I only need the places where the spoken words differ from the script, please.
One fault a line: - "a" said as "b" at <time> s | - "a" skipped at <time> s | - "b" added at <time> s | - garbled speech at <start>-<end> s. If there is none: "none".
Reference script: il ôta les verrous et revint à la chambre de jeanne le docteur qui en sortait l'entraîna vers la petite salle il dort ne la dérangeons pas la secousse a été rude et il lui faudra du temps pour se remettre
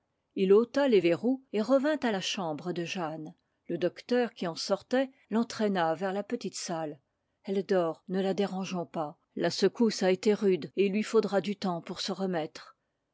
- "il" said as "elle" at 7.4 s